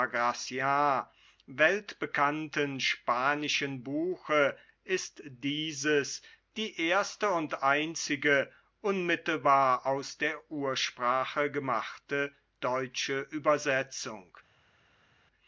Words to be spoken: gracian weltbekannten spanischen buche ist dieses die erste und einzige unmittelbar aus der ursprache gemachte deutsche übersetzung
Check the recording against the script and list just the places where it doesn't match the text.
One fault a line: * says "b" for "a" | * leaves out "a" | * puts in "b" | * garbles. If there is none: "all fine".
all fine